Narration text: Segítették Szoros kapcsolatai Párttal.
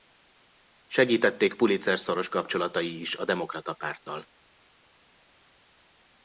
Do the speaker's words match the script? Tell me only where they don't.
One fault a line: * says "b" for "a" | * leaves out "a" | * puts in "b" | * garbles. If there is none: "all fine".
* puts in "Pulitzer"
* puts in "is a Demokrata"